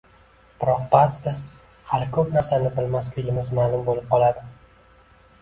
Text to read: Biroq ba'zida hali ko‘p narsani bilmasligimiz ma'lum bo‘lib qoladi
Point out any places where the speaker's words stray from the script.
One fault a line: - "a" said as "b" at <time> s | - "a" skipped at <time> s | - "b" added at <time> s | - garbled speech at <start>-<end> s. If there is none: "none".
none